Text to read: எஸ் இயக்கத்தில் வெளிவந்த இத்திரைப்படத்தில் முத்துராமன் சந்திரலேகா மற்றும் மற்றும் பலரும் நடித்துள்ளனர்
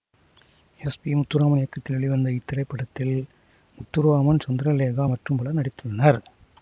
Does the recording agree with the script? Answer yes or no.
no